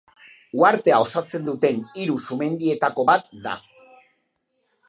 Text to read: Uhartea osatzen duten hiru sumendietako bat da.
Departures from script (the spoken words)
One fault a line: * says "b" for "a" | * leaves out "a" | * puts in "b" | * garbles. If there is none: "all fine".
all fine